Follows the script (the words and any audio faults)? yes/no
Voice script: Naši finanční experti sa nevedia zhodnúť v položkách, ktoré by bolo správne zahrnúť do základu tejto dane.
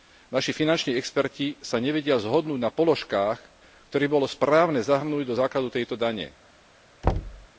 no